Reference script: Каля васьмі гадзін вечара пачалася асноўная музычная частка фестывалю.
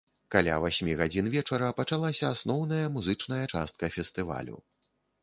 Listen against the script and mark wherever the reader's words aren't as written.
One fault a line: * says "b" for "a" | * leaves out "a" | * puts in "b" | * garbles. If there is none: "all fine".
all fine